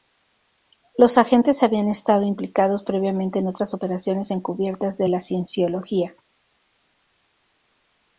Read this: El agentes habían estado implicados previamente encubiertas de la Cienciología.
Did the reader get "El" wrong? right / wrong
wrong